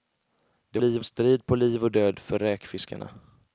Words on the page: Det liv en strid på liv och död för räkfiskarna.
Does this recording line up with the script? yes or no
yes